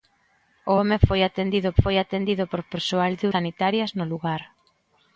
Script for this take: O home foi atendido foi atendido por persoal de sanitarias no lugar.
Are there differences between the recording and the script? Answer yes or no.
no